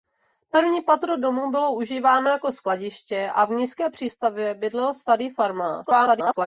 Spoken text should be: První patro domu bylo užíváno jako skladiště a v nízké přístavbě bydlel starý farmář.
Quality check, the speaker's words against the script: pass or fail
fail